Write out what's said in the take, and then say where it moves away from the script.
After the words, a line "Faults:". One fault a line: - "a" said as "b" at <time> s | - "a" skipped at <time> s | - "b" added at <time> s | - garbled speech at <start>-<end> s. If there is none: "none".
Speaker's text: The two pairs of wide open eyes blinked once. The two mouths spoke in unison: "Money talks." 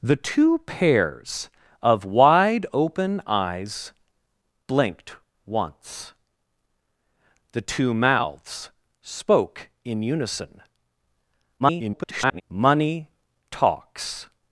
The two pairs of wide open eyes blinked once. The two mouths spoke in unison: [garbled] "Money talks."
Faults:
- garbled speech at 11.6-12.4 s